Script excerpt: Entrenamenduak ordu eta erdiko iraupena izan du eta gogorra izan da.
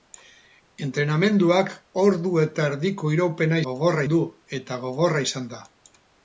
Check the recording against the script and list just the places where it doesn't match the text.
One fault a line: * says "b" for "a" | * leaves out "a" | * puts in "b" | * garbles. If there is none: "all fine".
* says "gogorra" for "izan"